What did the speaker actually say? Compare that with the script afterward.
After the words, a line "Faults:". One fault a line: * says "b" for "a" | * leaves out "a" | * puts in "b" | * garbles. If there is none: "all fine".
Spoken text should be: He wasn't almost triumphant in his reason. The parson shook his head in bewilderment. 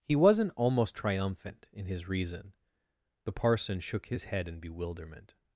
He wasn't almost triumphant in his reason. The parson shook his head in bewilderment.
Faults:
all fine